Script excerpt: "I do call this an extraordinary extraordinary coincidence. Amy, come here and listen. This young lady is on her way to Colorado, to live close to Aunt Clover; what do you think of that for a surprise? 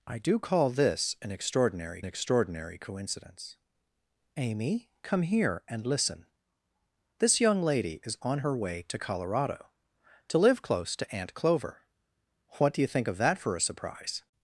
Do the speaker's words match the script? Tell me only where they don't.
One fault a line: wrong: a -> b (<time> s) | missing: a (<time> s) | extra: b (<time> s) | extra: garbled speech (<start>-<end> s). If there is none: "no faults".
no faults